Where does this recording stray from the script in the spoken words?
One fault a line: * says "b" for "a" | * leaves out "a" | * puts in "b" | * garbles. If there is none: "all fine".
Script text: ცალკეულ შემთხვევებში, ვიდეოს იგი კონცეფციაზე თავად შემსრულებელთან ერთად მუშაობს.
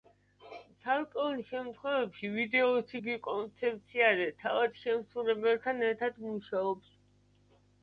all fine